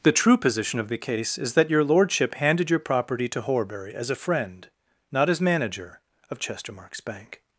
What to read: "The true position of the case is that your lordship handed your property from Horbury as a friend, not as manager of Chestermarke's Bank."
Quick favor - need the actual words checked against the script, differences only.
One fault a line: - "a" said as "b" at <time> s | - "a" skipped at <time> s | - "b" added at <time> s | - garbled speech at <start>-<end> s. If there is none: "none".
- "from" said as "to" at 3.3 s